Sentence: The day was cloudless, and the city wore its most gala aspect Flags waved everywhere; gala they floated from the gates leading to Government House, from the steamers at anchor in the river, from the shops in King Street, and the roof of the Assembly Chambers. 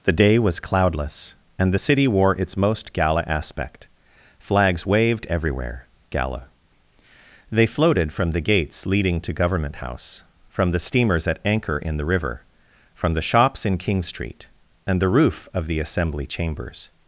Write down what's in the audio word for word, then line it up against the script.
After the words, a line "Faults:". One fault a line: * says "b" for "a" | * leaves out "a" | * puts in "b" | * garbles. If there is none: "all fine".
The day was cloudless, and the city wore its most gala aspect Flags waved everywhere; gala they floated from the gates leading to Government House, from the steamers at anchor in the river, from the shops in King Street, and the roof of the Assembly Chambers.
Faults:
all fine